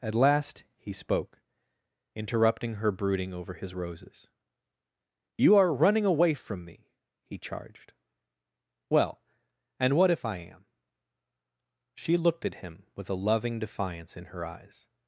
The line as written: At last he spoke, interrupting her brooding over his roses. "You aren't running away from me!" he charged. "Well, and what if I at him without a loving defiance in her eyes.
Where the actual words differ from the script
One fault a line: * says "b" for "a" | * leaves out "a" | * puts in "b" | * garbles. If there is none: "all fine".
* says "are" for "aren't"
* puts in "am She looked"
* says "with" for "without"